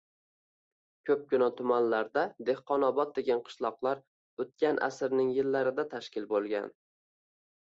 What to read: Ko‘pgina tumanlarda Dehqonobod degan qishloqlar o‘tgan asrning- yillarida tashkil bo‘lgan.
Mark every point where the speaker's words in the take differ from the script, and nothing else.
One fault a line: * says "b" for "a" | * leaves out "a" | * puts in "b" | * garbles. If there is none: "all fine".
all fine